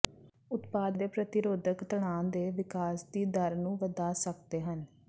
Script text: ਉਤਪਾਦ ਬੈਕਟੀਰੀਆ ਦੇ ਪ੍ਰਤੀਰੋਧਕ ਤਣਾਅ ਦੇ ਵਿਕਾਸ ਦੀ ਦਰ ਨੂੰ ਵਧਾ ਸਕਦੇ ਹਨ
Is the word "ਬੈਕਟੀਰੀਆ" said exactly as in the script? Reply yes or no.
no